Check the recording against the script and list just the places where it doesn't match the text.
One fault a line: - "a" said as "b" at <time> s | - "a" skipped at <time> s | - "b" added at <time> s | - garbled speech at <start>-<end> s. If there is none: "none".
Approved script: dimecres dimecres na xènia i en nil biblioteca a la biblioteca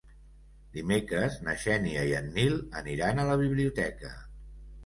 - "dimecres" skipped at 1.4 s
- "biblioteca" said as "aniran" at 2.8 s